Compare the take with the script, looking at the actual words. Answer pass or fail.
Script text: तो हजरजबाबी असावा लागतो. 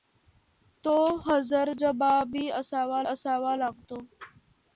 fail